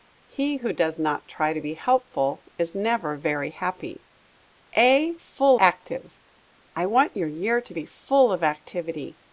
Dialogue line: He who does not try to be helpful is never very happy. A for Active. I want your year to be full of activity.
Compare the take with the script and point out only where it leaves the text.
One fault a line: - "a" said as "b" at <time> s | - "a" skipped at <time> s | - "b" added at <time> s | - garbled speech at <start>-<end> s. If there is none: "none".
- "for" said as "full" at 5.1 s